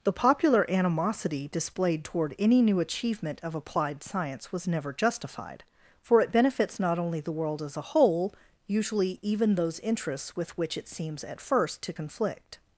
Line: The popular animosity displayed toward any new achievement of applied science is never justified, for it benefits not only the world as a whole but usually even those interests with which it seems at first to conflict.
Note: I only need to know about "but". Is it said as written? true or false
false